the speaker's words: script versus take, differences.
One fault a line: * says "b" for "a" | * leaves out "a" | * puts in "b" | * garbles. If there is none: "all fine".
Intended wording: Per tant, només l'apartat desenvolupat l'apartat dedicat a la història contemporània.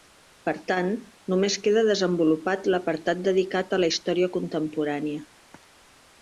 * says "queda" for "l'apartat"